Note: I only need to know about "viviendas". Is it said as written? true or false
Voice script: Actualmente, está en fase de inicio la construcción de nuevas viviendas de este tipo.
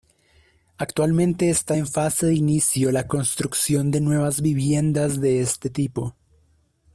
true